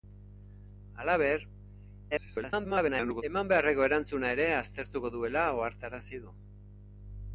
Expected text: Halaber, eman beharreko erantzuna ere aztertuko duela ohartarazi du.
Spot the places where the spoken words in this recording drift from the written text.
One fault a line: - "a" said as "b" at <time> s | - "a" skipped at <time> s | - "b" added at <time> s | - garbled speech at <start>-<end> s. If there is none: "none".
- garbled speech at 2.1-3.2 s